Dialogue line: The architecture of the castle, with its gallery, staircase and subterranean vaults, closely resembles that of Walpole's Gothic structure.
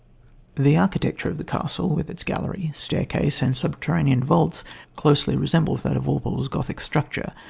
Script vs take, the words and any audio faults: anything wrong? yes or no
no